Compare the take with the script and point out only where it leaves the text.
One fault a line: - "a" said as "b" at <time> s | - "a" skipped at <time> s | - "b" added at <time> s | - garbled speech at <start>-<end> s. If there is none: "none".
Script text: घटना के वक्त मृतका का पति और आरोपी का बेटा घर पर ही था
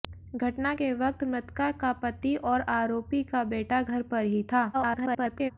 - garbled speech at 4.7-5.5 s